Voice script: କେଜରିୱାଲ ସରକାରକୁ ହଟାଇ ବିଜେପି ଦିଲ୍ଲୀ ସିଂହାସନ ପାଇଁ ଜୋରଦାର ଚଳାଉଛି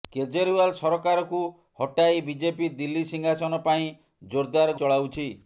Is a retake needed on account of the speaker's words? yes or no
no